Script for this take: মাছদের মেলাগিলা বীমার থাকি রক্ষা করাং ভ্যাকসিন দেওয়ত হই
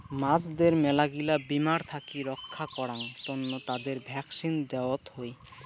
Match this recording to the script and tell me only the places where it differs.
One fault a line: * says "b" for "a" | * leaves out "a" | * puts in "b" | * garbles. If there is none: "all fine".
* puts in "তন্ন তাদের"